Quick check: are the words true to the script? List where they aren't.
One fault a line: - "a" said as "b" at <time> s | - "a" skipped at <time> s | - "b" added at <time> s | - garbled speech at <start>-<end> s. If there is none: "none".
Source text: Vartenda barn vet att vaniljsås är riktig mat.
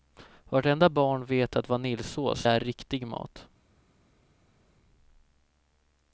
none